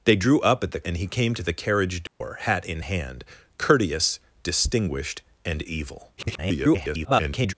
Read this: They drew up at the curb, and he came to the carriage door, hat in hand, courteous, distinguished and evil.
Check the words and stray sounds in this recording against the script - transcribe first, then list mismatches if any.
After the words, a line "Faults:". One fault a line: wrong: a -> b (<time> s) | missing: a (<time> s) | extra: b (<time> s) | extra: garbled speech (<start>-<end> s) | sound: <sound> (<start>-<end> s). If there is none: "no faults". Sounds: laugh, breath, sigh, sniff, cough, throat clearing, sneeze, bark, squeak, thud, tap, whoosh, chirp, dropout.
They drew up at the and he came to the carriage door, hat in hand, courteous, distinguished and evil. [garbled]
Faults:
missing: curb (0.8 s)
sound: dropout (2.1-2.2 s)
extra: garbled speech (6.2-7.5 s)